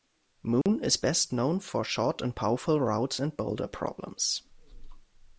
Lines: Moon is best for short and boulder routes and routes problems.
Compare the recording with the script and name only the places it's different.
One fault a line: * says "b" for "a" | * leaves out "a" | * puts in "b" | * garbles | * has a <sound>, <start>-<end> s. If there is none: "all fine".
* has a dropout, 0.6-0.7 s
* puts in "known"
* says "powerful" for "boulder"
* says "boulder" for "routes"